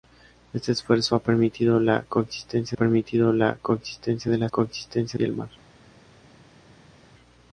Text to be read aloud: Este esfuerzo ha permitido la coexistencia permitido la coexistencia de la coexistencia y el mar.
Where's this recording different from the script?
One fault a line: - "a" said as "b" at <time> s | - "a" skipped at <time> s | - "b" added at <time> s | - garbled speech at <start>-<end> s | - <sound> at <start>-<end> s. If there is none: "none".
none